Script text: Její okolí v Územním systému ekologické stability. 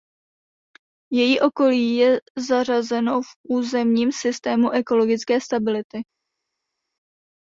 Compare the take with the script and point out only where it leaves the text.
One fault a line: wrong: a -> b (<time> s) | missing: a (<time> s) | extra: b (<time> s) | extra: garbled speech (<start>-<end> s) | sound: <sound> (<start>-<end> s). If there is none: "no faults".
extra: je zařazeno (1.9 s)